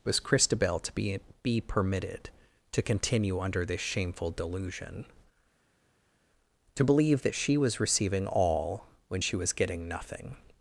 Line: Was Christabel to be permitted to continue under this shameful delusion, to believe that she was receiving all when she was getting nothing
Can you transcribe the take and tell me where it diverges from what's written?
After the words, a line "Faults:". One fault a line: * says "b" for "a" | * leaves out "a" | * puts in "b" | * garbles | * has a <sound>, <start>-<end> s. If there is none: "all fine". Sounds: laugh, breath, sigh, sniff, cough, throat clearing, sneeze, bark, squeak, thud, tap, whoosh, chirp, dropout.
Was Christabel to be be permitted to continue under this shameful delusion, to believe that she was receiving all when she was getting nothing
Faults:
* puts in "be"